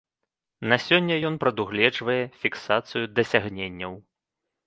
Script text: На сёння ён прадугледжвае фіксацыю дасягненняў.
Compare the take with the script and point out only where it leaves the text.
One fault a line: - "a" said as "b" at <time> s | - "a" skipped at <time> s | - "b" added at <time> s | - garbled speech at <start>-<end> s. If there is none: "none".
none